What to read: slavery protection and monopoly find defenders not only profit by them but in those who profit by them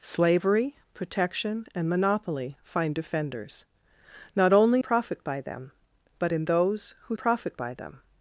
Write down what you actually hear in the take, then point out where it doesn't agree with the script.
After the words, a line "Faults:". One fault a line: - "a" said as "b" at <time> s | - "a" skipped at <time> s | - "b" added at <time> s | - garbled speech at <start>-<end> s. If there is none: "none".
slavery protection and monopoly find defenders not only profit by them but in those who profit by them
Faults:
none